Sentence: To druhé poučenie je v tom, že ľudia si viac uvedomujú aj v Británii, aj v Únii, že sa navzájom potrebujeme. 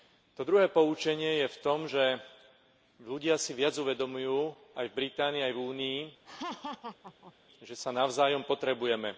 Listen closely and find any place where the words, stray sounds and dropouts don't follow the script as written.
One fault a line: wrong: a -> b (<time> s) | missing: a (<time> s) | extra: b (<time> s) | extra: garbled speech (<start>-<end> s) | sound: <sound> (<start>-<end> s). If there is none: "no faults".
sound: laugh (6.2-7.3 s)